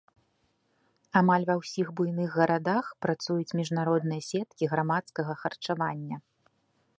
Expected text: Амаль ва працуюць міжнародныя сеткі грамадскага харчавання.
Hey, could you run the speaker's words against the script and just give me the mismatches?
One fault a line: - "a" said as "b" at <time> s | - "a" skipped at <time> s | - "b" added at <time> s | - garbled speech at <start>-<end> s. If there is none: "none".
- "ўсіх буйных гарадах" added at 1.6 s